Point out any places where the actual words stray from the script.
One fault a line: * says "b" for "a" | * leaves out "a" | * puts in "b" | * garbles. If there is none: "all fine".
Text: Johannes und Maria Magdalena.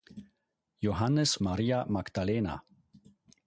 * leaves out "und"